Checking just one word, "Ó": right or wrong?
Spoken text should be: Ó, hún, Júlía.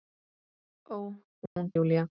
right